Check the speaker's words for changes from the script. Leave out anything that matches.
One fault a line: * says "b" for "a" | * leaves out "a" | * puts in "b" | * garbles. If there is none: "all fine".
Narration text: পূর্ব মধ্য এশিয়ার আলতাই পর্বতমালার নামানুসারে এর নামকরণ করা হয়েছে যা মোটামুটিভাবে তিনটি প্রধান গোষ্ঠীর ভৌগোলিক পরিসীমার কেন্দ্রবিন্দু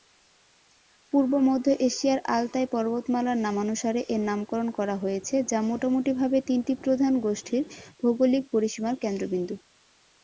all fine